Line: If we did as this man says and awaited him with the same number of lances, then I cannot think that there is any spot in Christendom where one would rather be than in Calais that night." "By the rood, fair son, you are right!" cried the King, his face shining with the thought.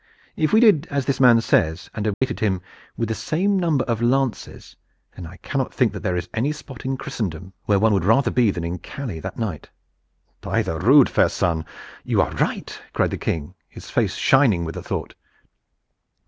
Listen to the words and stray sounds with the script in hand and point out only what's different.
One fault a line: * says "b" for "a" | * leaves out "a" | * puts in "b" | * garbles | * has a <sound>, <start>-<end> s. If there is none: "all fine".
* has a dropout, 2.1-2.2 s